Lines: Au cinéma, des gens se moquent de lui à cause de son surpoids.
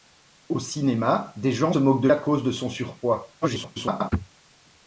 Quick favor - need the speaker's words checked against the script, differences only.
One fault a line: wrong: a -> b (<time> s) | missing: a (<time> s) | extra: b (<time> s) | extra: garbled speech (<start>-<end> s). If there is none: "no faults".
missing: se (1.7 s)
missing: lui (2.1 s)
extra: garbled speech (3.4-4.1 s)